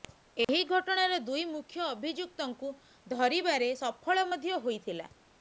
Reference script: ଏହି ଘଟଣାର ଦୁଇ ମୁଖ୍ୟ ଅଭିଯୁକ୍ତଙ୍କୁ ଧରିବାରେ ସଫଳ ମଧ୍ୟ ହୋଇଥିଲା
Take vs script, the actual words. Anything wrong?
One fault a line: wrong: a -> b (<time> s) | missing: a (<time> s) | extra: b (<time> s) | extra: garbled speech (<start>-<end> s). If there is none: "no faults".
no faults